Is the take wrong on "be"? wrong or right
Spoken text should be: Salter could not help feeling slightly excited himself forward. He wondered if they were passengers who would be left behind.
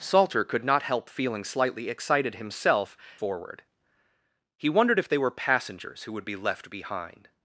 right